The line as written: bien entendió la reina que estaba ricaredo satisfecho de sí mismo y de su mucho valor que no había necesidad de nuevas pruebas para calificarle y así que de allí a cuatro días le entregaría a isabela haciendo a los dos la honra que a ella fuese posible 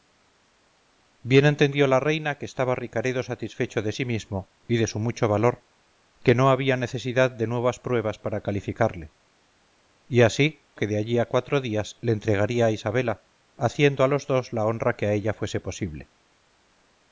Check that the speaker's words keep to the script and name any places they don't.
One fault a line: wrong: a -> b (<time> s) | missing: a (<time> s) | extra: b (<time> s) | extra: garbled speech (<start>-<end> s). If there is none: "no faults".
no faults